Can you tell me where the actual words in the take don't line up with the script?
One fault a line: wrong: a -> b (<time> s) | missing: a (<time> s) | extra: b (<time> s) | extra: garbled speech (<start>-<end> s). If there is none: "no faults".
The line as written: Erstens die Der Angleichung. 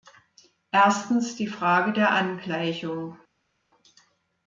extra: Frage (1.4 s)